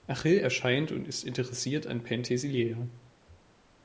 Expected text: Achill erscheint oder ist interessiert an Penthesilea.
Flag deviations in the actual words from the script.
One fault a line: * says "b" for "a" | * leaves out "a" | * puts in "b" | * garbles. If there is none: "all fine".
* says "und" for "oder"